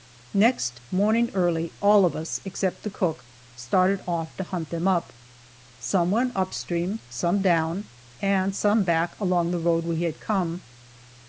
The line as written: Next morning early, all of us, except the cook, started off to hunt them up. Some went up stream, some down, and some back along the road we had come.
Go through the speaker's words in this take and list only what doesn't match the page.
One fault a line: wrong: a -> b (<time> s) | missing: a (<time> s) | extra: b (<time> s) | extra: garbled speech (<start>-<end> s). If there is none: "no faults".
no faults